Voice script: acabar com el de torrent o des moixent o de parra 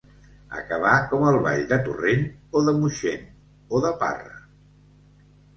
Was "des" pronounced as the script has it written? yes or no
no